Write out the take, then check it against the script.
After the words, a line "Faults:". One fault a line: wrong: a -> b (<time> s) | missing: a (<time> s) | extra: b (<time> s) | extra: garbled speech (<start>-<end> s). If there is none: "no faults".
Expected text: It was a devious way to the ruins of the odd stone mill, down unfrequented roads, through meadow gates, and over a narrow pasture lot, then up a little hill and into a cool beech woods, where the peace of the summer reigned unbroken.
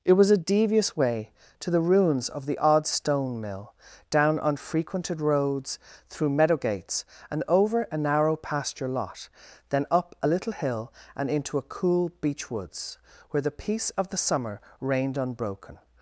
It was a devious way to the ruins of the odd stone mill, down unfrequented roads, through meadow gates, and over a narrow pasture lot, then up a little hill and into a cool beech woods, where the peace of the summer reigned unbroken.
Faults:
no faults